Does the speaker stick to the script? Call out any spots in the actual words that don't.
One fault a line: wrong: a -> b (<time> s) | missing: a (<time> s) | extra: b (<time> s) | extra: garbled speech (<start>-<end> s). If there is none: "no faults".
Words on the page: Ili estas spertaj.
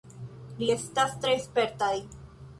extra: tre (1.2 s)